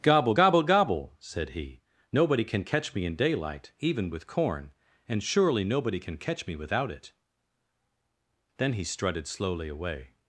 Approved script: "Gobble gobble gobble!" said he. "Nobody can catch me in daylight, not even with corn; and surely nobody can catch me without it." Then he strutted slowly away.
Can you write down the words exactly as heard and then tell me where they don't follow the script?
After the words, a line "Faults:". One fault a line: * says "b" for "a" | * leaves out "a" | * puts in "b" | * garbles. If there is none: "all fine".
"Gobble gobble gobble!" said he. "Nobody can catch me in daylight, even with corn; and surely nobody can catch me without it." Then he strutted slowly away.
Faults:
* leaves out "not"